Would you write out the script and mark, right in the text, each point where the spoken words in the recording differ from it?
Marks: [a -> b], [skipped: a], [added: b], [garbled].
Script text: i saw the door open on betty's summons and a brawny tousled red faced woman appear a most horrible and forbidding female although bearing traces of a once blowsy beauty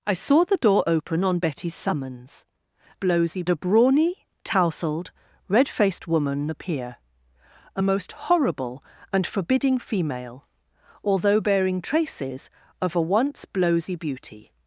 i saw the door open on betty's summons [and -> blowsy] a brawny tousled red faced woman appear a most horrible and forbidding female although bearing traces of a once blowsy beauty